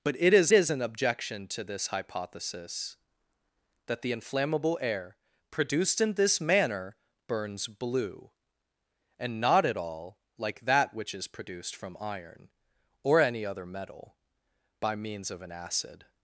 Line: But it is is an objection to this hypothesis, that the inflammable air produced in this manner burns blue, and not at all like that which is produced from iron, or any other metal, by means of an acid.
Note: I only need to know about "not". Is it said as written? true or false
true